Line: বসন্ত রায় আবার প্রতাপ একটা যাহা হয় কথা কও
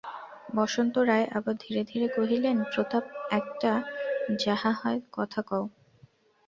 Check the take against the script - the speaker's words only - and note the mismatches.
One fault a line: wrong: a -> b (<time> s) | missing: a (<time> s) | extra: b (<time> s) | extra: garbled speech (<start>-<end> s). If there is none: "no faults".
extra: ধীরে ধীরে কহিলেন (1.6 s)